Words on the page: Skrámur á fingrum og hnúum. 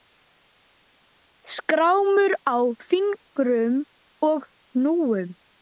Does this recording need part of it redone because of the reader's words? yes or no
no